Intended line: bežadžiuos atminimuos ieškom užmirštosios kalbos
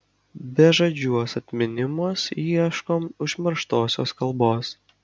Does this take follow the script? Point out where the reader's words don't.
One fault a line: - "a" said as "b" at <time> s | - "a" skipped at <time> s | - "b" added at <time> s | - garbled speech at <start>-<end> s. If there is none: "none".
none